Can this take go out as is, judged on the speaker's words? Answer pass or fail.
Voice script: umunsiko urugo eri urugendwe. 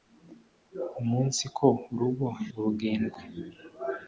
fail